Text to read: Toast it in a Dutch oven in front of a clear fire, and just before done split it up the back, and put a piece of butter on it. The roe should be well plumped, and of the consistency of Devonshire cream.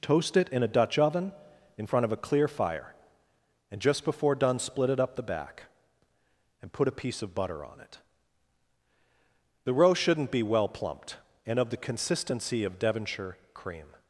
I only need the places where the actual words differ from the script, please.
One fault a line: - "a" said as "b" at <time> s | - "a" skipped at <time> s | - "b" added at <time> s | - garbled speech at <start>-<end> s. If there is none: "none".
- "should" said as "shouldn't" at 9.9 s